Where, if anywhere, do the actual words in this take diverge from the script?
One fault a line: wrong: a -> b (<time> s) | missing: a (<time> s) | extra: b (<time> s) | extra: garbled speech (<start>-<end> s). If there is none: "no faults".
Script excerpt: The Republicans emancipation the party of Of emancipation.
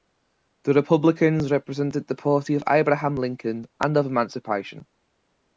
wrong: emancipation -> represented (1.5 s)
extra: Abraham Lincoln and (2.7 s)